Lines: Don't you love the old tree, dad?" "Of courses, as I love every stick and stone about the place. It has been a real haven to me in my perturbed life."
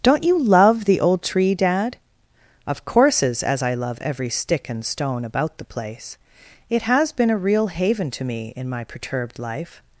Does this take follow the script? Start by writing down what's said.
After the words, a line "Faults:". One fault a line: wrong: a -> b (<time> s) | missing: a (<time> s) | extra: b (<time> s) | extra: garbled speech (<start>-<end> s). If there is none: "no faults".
Don't you love the old tree, dad?" "Of courses, as I love every stick and stone about the place. It has been a real haven to me in my perturbed life."
Faults:
no faults